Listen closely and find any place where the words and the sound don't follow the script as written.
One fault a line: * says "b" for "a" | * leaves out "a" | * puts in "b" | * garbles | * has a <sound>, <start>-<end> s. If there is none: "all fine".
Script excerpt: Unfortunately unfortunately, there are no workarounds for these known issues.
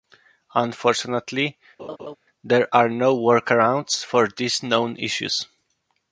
* leaves out "unfortunately"
* has a laugh, 1.8-2.2 s